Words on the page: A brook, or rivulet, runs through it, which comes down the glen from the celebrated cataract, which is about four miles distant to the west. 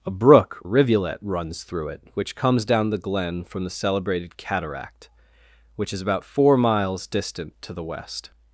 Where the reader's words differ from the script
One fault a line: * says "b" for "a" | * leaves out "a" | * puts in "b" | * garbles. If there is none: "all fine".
* leaves out "or"